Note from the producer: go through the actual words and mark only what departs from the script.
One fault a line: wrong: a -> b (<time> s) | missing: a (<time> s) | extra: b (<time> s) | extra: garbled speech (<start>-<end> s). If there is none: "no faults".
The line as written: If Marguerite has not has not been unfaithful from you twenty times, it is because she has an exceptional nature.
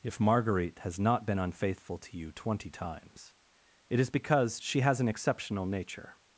missing: has not (1.3 s)
wrong: from -> to (2.0 s)